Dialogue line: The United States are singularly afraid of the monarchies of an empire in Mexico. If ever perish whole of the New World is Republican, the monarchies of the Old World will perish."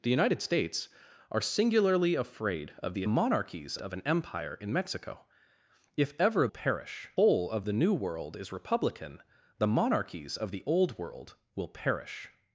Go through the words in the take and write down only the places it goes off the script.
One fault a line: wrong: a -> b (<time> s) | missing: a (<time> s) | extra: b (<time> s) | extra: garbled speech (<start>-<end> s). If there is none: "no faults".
no faults